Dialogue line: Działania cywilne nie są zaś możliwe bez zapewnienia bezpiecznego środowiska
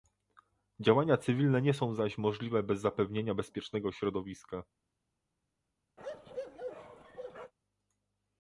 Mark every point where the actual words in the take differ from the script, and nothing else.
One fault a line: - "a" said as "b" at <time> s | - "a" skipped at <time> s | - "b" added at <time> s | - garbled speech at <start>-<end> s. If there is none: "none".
none